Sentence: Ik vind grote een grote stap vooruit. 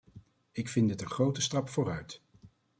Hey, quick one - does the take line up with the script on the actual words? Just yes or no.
no